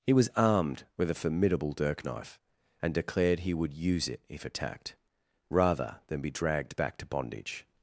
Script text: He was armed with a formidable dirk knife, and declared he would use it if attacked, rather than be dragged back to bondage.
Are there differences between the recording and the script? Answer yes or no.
no